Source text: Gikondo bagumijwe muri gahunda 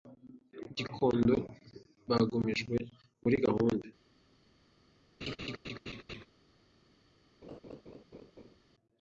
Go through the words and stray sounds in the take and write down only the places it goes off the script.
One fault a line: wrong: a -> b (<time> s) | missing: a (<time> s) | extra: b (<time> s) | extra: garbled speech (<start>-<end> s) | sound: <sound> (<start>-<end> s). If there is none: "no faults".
sound: laugh (5.2-6.3 s)
sound: laugh (7.4-8.6 s)